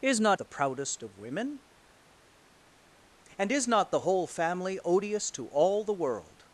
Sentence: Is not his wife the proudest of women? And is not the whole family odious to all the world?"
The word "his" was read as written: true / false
false